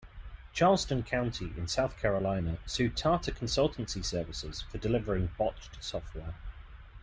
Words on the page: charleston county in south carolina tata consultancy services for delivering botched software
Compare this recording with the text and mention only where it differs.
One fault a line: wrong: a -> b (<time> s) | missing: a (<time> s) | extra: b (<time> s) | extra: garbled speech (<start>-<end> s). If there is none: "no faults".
extra: sued (2.6 s)